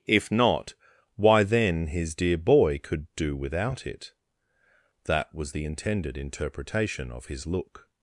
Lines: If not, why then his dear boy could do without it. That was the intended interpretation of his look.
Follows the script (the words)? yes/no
yes